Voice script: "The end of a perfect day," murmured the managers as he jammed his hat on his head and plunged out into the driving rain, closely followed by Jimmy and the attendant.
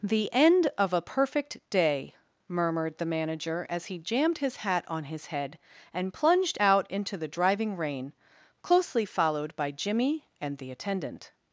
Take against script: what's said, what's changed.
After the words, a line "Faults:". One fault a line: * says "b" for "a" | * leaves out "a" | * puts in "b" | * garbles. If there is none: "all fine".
"The end of a perfect day," murmured the manager as he jammed his hat on his head and plunged out into the driving rain, closely followed by Jimmy and the attendant.
Faults:
* says "manager" for "managers"